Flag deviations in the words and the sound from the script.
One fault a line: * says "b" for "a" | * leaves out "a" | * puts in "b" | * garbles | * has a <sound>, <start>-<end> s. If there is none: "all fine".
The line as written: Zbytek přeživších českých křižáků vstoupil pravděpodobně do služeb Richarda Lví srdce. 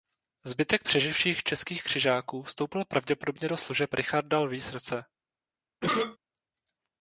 * has a cough, 5.8-6.2 s